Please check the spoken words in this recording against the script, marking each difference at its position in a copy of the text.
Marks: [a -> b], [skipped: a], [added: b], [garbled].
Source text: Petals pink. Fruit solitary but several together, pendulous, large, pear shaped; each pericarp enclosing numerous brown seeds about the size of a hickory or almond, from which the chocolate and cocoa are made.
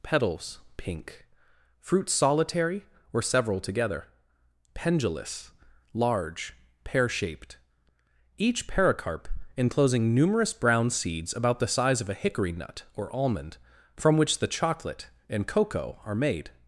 Petals pink. Fruit solitary [but -> or] several together, pendulous, large, pear shaped; each pericarp enclosing numerous brown seeds about the size of a hickory [added: nut] or almond, from which the chocolate and cocoa are made.